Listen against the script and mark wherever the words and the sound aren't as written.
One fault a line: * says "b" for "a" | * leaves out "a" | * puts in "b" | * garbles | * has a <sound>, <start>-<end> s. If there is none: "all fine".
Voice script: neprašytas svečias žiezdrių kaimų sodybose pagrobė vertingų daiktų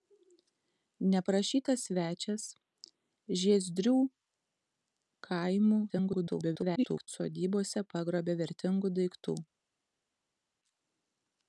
* garbles